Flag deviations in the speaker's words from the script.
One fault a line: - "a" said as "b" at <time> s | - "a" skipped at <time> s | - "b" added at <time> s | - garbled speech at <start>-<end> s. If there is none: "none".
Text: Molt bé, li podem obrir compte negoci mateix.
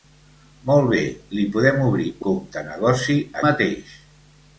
none